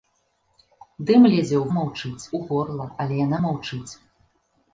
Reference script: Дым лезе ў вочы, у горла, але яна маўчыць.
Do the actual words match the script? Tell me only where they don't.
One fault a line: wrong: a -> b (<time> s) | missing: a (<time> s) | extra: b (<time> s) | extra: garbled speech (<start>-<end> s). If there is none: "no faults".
wrong: вочы -> маўчыць (1.8 s)